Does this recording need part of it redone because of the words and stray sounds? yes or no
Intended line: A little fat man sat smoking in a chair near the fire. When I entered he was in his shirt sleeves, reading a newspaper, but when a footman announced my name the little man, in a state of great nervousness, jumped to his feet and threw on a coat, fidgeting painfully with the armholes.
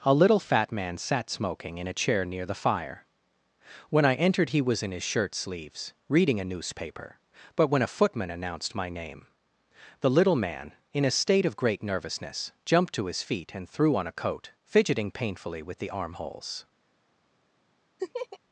yes